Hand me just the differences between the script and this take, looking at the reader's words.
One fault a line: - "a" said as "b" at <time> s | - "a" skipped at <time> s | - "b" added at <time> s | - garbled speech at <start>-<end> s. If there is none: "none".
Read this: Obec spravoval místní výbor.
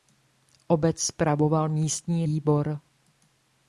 none